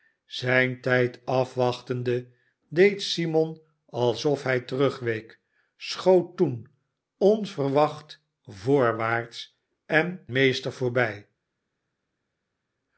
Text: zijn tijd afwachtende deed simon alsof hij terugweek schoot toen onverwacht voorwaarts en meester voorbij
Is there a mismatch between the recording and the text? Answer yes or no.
no